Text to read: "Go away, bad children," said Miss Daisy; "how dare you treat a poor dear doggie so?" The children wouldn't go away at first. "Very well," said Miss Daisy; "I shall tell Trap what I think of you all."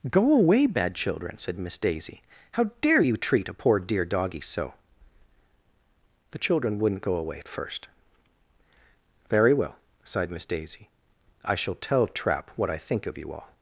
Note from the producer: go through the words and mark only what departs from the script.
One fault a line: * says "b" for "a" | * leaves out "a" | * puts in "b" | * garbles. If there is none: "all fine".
* says "sighed" for "said"